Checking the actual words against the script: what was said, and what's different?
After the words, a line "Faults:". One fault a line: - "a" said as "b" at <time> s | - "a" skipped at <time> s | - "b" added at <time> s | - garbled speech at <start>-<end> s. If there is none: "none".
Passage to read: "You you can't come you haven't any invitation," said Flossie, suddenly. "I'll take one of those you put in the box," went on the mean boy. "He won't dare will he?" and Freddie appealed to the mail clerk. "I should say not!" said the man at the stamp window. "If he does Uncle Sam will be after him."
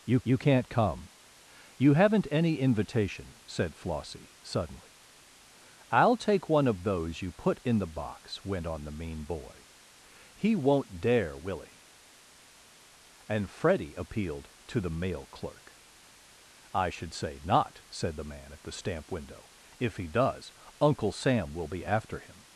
"You you can't come you haven't any invitation," said Flossie, suddenly. "I'll take one of those you put in the box," went on the mean boy. "He won't dare will he?" and Freddie appealed to the mail clerk. "I should say not!" said the man at the stamp window. "If he does Uncle Sam will be after him."
Faults:
none